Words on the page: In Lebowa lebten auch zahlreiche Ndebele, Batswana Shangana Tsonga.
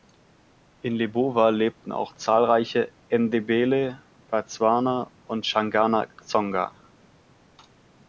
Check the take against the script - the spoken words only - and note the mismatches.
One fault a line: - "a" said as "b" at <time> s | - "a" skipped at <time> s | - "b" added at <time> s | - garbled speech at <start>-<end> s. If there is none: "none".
- "und" added at 5.3 s